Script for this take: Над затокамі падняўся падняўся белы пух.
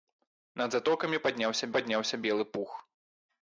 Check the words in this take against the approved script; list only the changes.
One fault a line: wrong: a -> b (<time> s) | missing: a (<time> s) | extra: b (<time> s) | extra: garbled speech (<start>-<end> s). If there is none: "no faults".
no faults